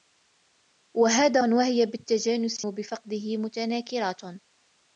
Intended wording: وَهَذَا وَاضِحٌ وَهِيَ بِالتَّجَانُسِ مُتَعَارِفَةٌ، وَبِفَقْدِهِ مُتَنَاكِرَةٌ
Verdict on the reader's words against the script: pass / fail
fail